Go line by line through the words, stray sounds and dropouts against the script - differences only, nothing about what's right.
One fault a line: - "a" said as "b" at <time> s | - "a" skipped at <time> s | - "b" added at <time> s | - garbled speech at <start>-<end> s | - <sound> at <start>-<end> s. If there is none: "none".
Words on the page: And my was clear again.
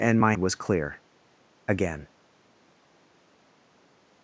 none